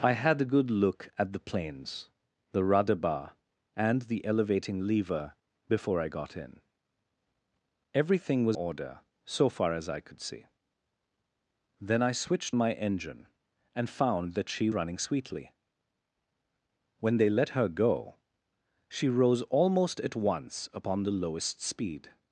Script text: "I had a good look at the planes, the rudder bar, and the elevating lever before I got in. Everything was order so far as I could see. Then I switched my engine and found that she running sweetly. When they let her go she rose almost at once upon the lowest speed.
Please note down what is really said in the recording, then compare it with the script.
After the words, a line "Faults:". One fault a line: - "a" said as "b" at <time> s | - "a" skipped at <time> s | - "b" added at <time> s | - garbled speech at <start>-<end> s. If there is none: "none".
"I had a good look at the planes, the rudder bar, and the elevating lever before I got in. Everything was order so far as I could see. Then I switched my engine and found that she running sweetly. When they let her go she rose almost at once upon the lowest speed.
Faults:
none